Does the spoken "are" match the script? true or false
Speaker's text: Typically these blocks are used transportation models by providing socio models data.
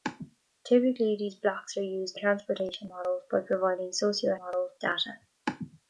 true